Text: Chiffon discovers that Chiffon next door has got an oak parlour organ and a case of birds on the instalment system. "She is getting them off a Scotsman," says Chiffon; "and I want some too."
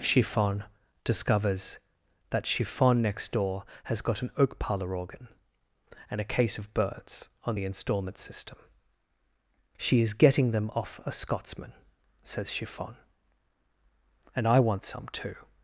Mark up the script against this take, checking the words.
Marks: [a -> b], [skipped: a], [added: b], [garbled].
Chiffon discovers that Chiffon next door has got an oak parlour organ and a case of birds on the instalment system. "She is getting them off a Scotsman," says Chiffon; "and I want some too."